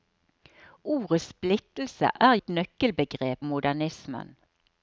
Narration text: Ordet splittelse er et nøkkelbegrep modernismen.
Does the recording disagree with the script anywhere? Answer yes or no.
no